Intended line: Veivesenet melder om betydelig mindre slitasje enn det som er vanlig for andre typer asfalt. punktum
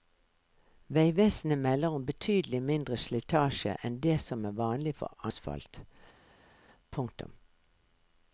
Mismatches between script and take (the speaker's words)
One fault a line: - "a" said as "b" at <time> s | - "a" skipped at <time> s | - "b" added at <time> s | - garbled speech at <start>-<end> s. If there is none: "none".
- "andre typer" skipped at 5.3 s